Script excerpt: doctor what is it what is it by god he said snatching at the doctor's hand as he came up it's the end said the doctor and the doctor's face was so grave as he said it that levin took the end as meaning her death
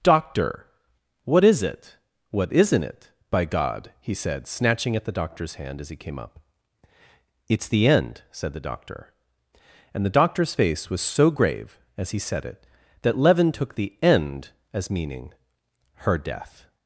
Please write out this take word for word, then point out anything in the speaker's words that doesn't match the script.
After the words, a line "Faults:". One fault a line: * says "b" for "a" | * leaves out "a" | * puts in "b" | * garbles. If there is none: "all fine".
doctor what is it what isn't it by god he said snatching at the doctor's hand as he came up it's the end said the doctor and the doctor's face was so grave as he said it that levin took the end as meaning her death
Faults:
* says "isn't" for "is"